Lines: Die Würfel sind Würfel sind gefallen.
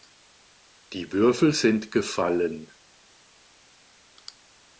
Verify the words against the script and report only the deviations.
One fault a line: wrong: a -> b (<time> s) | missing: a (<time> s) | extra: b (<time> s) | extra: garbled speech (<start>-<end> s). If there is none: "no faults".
missing: Würfel sind (1.9 s)